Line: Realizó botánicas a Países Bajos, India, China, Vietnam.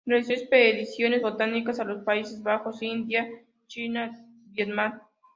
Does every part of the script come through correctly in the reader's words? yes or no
no